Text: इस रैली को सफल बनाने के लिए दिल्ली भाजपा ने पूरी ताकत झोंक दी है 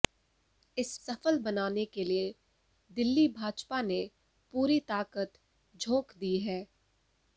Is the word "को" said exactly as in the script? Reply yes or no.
no